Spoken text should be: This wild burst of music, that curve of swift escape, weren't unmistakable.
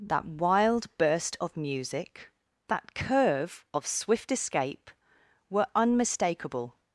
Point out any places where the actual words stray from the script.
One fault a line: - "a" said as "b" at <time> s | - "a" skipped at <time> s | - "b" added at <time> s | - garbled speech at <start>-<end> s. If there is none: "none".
- "This" said as "That" at 0.0 s
- "weren't" said as "were" at 5.5 s